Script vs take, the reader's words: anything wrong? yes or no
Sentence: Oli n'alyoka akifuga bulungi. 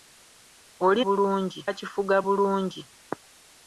yes